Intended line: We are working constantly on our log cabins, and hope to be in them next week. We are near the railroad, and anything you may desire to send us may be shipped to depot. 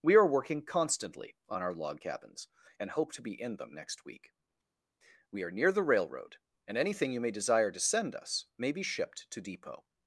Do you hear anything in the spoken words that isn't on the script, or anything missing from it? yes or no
no